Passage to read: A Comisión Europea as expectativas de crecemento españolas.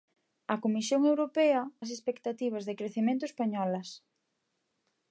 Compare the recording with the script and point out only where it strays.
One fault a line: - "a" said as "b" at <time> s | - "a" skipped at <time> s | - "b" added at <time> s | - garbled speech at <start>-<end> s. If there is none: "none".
none